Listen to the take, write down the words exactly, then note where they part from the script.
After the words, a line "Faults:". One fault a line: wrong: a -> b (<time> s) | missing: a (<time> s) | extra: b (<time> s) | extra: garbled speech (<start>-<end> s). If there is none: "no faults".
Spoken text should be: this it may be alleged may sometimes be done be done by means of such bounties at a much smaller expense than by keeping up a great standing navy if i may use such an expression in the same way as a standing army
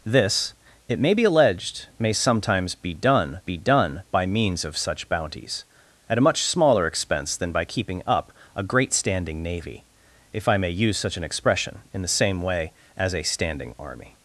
this it may be alleged may sometimes be done be done by means of such bounties at a much smaller expense than by keeping up a great standing navy if i may use such an expression in the same way as a standing army
Faults:
no faults